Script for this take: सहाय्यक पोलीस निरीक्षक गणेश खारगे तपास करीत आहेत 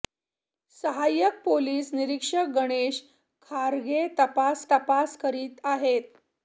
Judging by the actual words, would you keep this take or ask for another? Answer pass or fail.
fail